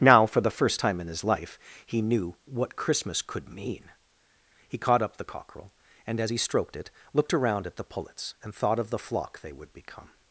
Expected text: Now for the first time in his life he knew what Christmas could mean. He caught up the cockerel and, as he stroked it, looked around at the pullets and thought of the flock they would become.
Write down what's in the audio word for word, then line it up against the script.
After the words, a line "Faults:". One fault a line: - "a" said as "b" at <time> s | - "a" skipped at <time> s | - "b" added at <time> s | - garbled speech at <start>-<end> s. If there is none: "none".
Now for the first time in his life he knew what Christmas could mean. He caught up the cockerel and, as he stroked it, looked around at the pullets and thought of the flock they would become.
Faults:
none